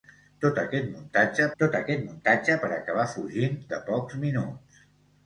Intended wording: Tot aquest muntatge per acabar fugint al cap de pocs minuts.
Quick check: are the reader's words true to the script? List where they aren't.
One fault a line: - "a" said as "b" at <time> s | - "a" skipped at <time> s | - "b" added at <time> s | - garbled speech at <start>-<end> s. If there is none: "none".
- "tot aquest muntatge" added at 1.6 s
- "al cap" skipped at 3.6 s